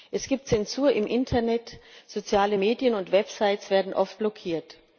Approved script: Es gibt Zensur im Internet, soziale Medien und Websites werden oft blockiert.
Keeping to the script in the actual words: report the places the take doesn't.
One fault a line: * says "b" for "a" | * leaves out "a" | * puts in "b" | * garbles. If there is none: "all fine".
all fine